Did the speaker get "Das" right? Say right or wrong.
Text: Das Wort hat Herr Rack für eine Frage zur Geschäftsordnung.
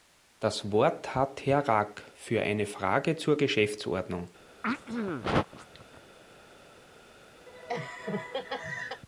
right